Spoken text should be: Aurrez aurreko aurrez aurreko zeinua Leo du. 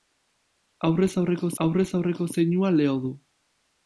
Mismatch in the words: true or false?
false